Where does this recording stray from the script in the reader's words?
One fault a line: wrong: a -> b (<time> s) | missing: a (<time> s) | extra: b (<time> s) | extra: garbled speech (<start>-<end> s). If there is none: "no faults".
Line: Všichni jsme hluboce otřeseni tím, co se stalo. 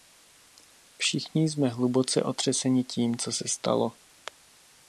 no faults